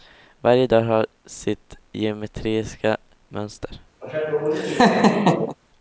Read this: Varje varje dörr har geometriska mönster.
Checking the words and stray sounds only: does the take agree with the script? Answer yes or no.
no